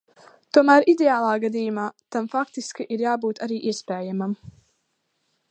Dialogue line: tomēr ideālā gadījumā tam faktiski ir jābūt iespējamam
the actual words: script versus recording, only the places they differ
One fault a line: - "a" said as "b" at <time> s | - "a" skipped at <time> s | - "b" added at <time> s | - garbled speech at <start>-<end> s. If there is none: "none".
- "arī" added at 3.5 s